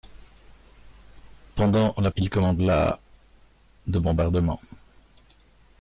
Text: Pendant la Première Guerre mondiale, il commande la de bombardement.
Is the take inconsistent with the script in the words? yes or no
yes